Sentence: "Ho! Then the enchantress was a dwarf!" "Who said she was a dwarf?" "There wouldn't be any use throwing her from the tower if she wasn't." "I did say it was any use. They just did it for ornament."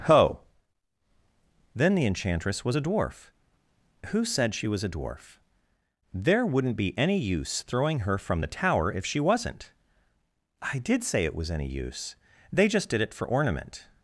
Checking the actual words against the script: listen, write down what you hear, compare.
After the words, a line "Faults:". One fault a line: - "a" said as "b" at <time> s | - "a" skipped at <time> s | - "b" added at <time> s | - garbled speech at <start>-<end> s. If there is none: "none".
"Ho! Then the enchantress was a dwarf!" "Who said she was a dwarf?" "There wouldn't be any use throwing her from the tower if she wasn't." "I did say it was any use. They just did it for ornament."
Faults:
none